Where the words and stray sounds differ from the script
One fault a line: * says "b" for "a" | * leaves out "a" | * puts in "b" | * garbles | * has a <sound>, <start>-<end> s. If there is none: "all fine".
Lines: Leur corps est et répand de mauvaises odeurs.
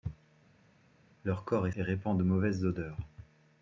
all fine